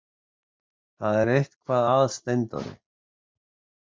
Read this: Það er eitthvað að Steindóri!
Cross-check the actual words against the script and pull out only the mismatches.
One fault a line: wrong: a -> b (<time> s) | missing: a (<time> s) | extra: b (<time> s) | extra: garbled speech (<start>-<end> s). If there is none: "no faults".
no faults